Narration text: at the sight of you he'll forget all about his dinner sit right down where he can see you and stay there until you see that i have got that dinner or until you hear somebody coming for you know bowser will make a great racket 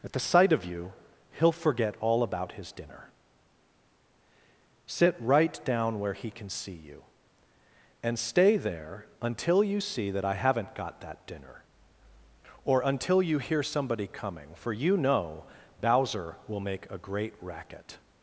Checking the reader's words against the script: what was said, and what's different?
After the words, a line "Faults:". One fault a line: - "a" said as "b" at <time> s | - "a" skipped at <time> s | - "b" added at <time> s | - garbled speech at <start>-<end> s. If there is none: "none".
at the sight of you he'll forget all about his dinner sit right down where he can see you and stay there until you see that i haven't got that dinner or until you hear somebody coming for you know bowser will make a great racket
Faults:
- "have" said as "haven't" at 10.3 s